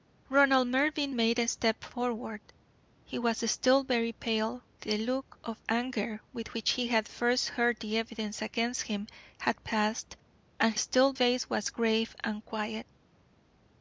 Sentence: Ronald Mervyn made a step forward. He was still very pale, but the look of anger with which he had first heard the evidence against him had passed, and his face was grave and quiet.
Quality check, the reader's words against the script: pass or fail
fail